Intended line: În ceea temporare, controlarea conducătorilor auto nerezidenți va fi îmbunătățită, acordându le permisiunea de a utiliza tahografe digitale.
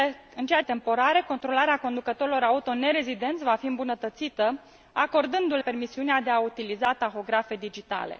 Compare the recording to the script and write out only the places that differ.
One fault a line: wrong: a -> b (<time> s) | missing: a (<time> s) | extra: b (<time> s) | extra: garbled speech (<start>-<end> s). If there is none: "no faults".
no faults